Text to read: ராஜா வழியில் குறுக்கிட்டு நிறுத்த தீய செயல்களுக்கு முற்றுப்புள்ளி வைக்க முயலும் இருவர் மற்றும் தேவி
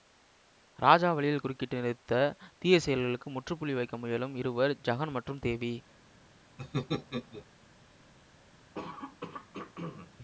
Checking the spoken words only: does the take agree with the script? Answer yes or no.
no